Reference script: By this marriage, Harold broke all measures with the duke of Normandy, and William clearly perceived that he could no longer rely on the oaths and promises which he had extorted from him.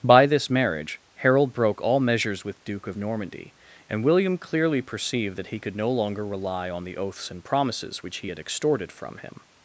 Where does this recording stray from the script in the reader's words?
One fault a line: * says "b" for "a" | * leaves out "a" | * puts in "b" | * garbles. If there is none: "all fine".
* leaves out "the"